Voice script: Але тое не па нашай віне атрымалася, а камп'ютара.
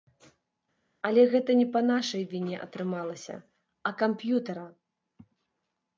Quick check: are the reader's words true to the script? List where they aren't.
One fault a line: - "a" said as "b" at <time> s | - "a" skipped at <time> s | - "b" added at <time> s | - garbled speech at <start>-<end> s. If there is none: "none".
- "тое" said as "гэта" at 1.3 s